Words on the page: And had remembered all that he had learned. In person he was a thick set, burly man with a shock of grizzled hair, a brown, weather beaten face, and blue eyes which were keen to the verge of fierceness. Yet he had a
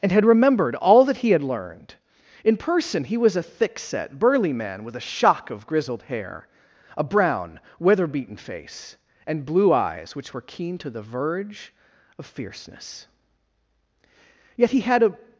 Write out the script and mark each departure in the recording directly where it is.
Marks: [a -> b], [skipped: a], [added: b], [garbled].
And had remembered all that he had learned. In person he was a thick set, burly man with a shock of grizzled hair, a brown, weather beaten face, and blue eyes which were keen to the verge of fierceness. Yet he had a